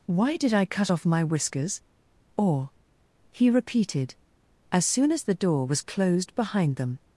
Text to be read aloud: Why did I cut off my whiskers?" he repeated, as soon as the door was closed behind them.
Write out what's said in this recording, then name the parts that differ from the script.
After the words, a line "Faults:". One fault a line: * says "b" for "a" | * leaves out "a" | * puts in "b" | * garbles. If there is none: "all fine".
Why did I cut off my whiskers?" or he repeated, as soon as the door was closed behind them.
Faults:
* puts in "or"